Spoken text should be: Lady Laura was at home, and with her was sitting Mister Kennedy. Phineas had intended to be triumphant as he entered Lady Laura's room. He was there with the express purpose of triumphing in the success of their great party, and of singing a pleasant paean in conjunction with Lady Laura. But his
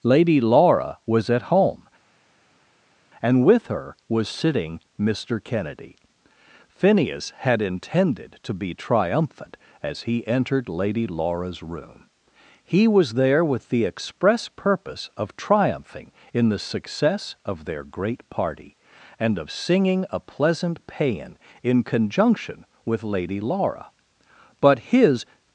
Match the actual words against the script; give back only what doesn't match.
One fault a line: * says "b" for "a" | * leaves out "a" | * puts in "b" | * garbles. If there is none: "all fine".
all fine